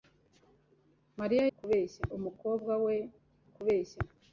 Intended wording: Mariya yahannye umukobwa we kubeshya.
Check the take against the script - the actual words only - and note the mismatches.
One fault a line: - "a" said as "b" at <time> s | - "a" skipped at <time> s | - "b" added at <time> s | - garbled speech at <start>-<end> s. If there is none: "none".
- "yahannye" said as "kubeshya" at 1.6 s